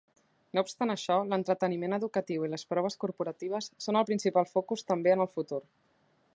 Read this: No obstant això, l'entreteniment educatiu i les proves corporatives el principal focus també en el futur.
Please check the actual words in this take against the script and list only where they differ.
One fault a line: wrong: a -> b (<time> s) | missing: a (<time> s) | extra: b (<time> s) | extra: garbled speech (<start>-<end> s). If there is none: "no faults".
extra: són (3.9 s)